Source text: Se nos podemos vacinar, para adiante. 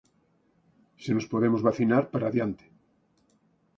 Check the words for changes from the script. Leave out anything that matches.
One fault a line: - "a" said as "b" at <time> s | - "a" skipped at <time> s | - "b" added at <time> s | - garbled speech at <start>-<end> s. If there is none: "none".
none